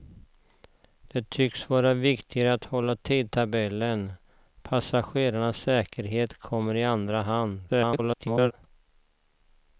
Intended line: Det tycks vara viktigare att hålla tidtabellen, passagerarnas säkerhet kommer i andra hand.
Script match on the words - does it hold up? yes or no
no